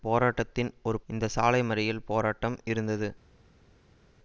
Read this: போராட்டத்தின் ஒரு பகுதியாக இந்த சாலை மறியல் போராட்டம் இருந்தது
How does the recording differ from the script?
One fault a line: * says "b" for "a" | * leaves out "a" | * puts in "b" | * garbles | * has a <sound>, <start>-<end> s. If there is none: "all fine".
* leaves out "பகுதியாக"